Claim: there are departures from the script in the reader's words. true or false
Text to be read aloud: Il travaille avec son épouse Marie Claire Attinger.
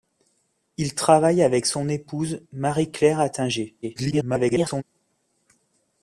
true